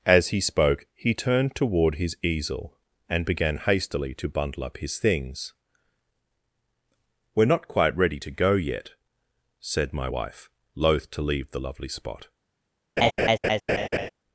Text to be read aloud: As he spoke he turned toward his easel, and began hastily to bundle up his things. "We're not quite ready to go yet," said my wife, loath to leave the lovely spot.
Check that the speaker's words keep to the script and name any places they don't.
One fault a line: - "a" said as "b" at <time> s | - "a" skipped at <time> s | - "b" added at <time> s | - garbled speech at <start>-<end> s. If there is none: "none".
none